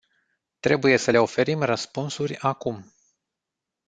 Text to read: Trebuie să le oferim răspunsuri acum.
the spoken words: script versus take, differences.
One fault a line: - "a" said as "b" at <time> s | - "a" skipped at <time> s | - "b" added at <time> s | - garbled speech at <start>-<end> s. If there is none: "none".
none